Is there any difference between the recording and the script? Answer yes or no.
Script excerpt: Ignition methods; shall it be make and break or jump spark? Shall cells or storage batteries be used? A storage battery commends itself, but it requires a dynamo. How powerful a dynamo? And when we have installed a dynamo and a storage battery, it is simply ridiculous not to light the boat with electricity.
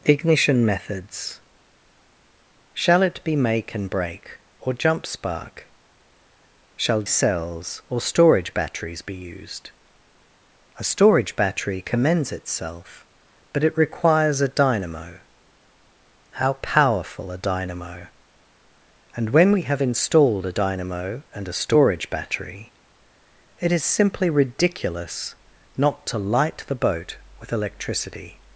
no